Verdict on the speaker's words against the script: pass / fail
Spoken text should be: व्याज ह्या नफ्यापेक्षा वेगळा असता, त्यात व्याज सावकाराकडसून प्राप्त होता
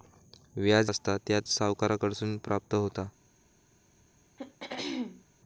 fail